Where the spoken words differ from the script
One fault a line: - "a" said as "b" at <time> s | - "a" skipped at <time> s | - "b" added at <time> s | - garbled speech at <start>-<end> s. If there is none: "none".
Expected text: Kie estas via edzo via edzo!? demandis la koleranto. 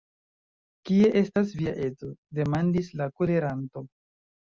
- "via edzo" skipped at 2.1 s